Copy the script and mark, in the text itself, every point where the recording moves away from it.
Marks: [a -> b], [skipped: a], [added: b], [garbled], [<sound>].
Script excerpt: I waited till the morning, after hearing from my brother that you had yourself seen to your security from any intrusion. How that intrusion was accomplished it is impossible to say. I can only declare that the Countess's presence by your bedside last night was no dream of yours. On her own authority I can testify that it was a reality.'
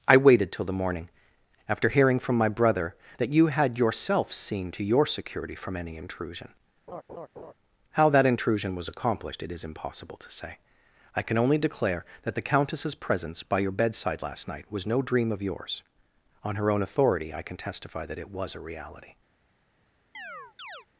I waited till the morning, after hearing from my brother that you had yourself seen to your security from any intrusion. [laugh] How that intrusion was accomplished it is impossible to say. I can only declare that the Countess's presence by your bedside last night was no dream of yours. On her own authority I can testify that it was a reality.' [chirp]